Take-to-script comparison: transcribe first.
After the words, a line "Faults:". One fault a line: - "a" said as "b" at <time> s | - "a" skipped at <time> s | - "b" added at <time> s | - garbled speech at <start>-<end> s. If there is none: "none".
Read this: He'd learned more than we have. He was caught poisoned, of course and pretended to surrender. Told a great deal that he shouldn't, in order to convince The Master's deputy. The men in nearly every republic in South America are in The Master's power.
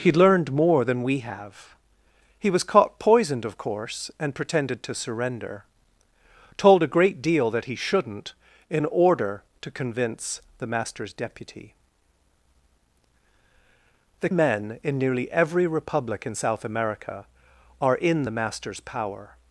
He'd learned more than we have. He was caught poisoned, of course and pretended to surrender. Told a great deal that he shouldn't, in order to convince The Master's deputy. The men in nearly every republic in South America are in The Master's power.
Faults:
none